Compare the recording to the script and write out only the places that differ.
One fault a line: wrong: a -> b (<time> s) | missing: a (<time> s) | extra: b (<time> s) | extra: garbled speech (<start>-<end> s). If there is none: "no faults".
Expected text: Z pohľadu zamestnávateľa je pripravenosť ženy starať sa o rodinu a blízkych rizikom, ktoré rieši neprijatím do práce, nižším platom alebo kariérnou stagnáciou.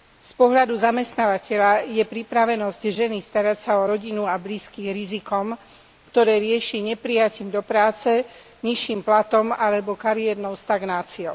no faults